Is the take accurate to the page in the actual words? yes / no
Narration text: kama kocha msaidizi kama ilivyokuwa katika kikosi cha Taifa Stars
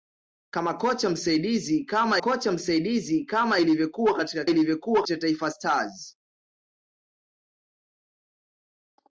no